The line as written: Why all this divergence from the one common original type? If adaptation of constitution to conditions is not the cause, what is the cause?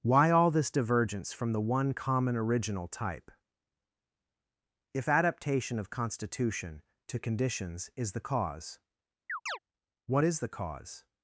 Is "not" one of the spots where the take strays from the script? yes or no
yes